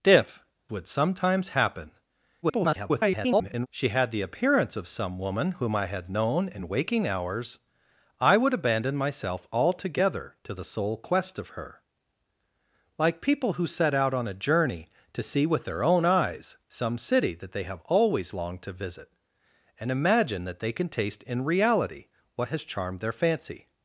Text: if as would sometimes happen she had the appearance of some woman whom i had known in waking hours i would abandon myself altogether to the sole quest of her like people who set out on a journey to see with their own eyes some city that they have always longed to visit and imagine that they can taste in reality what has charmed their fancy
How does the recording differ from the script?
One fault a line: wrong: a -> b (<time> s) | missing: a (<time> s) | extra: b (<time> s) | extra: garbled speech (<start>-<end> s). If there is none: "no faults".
missing: as (0.4 s)
extra: garbled speech (2.4-3.7 s)